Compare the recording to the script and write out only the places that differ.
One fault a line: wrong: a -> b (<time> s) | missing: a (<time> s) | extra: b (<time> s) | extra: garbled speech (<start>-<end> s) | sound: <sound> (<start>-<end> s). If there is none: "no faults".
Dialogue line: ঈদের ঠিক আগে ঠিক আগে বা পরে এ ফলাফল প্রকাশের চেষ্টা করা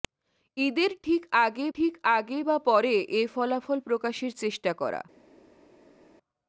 no faults